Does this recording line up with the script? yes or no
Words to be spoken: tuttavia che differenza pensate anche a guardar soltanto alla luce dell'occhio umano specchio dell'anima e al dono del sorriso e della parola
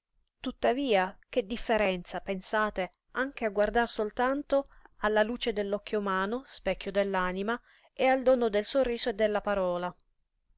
yes